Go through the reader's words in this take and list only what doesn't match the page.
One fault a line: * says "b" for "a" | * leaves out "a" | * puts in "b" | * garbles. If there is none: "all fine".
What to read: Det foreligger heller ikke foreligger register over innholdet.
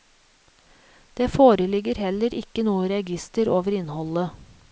* says "noe" for "foreligger"